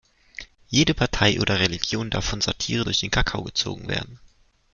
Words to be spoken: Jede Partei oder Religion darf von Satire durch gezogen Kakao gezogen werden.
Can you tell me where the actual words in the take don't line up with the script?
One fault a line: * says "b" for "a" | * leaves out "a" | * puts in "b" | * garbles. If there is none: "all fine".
* says "den" for "gezogen"